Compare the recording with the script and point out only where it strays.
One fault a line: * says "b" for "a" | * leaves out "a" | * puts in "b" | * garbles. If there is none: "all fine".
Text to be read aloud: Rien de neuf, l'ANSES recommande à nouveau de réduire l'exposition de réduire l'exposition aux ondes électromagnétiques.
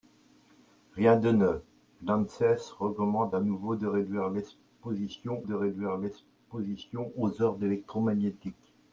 all fine